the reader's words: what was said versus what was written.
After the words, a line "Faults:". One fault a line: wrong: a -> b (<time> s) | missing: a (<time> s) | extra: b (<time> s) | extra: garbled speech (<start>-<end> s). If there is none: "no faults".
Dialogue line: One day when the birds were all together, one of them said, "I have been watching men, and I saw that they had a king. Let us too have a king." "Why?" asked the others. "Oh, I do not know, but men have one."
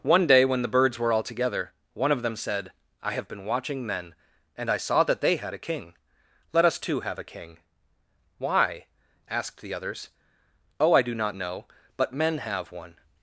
One day when the birds were all together, one of them said, "I have been watching men, and I saw that they had a king. Let us too have a king." "Why?" asked the others. "Oh, I do not know, but men have one."
Faults:
no faults